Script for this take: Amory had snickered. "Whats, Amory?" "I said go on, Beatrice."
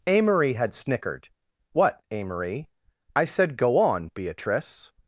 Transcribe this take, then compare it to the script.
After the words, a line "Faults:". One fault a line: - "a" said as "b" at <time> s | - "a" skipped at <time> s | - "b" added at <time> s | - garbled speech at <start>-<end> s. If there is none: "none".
Amory had snickered. "What, Amory?" "I said go on, Beatrice."
Faults:
- "Whats" said as "What" at 1.7 s